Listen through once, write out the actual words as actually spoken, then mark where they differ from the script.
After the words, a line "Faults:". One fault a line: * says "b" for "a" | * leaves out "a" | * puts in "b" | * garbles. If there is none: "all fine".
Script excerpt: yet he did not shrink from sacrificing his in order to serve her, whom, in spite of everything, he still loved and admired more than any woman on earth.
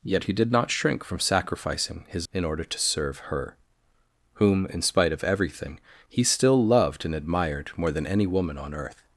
yet he did not shrink from sacrificing his in order to serve her, whom, in spite of everything, he still loved and admired more than any woman on earth.
Faults:
all fine